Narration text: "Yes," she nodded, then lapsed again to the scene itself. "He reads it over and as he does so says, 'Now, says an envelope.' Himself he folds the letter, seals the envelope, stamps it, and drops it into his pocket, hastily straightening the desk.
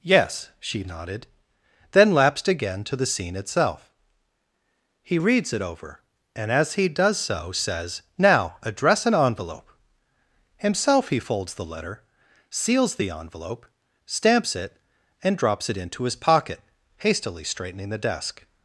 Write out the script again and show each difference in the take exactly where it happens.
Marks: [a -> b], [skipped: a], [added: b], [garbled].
"Yes," she nodded, then lapsed again to the scene itself. "He reads it over and as he does so says, 'Now, [says -> address] an envelope.' Himself he folds the letter, seals the envelope, stamps it, and drops it into his pocket, hastily straightening the desk.